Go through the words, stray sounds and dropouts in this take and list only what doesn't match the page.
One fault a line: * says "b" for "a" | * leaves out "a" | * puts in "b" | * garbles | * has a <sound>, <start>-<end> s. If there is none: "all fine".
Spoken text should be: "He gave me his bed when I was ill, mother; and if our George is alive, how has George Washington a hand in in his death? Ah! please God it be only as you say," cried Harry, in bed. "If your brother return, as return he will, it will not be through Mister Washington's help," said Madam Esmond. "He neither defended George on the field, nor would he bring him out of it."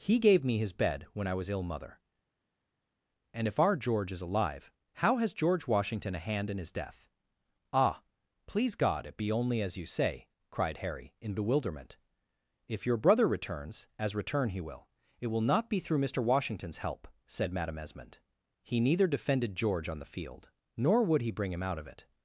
* leaves out "in"
* says "bewilderment" for "bed"
* says "returns" for "return"